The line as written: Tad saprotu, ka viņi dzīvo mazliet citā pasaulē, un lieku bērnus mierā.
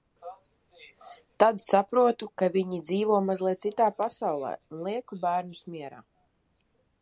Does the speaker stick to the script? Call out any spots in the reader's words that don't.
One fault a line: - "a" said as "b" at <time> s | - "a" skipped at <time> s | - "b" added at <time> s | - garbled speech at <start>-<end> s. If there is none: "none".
none